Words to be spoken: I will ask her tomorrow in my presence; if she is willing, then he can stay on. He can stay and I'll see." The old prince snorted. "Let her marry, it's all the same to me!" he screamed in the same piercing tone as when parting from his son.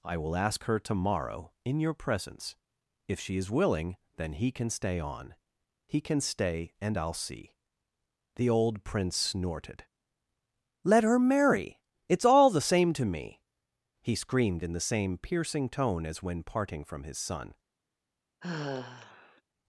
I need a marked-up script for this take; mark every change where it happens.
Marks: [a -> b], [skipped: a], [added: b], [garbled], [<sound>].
I will ask her tomorrow in [my -> your] presence; if she is willing, then he can stay on. He can stay and I'll see." The old prince snorted. "Let her marry, it's all the same to me!" he screamed in the same piercing tone as when parting from his son. [sigh]